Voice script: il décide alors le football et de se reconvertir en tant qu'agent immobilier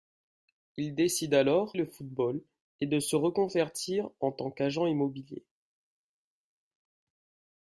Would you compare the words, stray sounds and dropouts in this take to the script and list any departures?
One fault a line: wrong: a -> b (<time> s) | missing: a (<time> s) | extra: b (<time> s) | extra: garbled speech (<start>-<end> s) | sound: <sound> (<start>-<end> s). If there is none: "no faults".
no faults